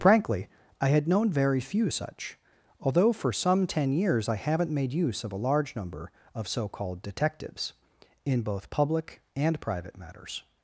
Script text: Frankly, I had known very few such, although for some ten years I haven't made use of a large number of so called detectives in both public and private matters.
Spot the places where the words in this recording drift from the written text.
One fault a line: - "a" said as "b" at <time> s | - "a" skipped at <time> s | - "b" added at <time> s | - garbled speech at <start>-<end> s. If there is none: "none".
none